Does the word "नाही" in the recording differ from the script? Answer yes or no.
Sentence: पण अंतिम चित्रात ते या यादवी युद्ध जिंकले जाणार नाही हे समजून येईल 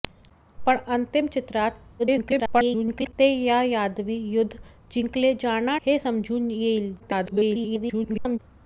yes